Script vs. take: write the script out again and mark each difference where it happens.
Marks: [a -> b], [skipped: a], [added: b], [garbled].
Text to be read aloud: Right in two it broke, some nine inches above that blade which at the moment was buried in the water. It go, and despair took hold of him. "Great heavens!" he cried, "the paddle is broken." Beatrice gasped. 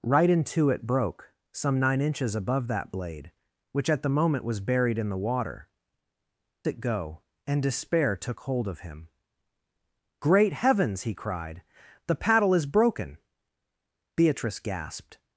Right in two it broke, some nine inches above that blade which at the moment was buried in the water. It go, and despair took hold of him. "Great heavens!" he cried, "the paddle is broken." Beatrice gasped.